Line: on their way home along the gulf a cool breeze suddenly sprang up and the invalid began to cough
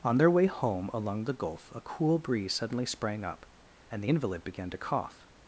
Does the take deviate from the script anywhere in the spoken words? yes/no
no